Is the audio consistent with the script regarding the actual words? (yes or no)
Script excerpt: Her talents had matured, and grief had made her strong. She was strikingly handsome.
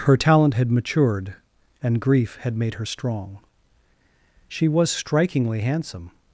no